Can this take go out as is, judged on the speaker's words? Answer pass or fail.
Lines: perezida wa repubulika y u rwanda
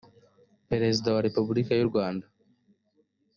pass